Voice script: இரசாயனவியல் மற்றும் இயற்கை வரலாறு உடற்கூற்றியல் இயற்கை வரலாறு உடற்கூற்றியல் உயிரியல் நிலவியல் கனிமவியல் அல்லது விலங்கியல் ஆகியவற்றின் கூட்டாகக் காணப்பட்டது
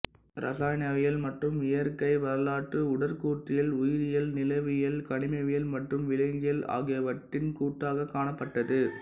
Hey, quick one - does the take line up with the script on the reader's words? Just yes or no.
no